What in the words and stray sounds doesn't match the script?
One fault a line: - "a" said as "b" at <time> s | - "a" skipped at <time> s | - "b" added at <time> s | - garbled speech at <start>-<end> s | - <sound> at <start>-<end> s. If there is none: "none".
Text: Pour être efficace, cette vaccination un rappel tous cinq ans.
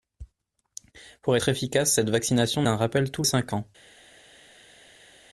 none